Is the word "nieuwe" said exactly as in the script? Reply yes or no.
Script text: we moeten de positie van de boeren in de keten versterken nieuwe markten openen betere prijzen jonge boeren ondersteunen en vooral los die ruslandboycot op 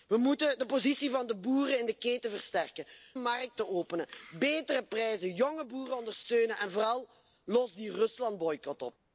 no